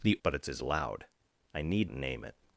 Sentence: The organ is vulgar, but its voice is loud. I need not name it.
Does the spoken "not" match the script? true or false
false